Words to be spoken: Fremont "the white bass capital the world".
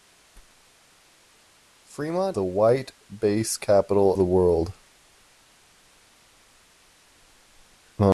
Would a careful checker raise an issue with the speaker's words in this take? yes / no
no